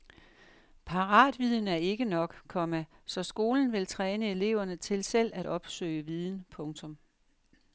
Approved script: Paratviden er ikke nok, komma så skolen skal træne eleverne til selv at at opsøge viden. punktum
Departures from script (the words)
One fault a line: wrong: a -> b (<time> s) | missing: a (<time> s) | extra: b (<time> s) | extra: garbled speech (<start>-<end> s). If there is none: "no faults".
wrong: skal -> vil (3.7 s)
missing: at (5.5 s)